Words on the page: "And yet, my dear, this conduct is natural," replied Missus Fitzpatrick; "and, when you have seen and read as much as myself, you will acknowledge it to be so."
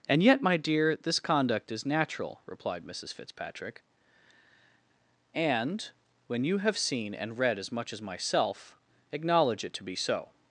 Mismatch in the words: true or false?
true